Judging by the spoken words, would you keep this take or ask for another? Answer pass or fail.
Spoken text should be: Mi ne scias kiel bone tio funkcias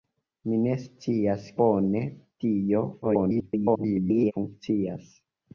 fail